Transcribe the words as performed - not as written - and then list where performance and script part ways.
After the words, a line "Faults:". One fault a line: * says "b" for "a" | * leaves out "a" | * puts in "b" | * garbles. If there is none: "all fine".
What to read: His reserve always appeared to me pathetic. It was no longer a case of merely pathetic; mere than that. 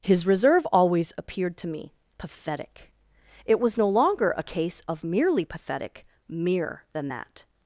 His reserve always appeared to me pathetic. It was no longer a case of merely pathetic; mere than that.
Faults:
all fine